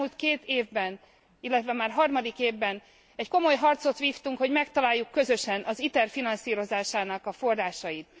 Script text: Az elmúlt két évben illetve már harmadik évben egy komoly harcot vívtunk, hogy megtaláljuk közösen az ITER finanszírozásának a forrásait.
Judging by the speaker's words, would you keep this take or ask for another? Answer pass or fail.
pass